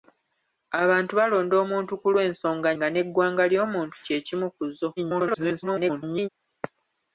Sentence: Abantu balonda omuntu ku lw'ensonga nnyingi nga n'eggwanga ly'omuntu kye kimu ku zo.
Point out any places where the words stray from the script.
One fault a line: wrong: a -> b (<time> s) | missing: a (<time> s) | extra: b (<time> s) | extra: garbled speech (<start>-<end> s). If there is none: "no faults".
missing: nnyingi (2.7 s)
extra: garbled speech (5.0-6.3 s)